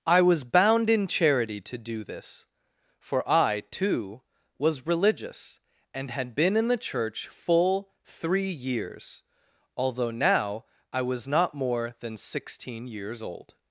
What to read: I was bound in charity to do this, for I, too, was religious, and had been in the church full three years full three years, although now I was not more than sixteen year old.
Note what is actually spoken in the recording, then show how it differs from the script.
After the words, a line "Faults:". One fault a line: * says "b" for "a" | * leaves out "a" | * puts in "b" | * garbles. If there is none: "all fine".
I was bound in charity to do this, for I, too, was religious, and had been in the church full three years, although now I was not more than sixteen years old.
Faults:
* leaves out "full three years"
* says "years" for "year"